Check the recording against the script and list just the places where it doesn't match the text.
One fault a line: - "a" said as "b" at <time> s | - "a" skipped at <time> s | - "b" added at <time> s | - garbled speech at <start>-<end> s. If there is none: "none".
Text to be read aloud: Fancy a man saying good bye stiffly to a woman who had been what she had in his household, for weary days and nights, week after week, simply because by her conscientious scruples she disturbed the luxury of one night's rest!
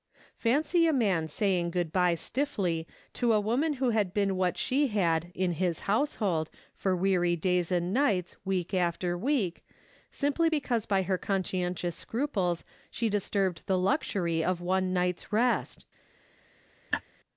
none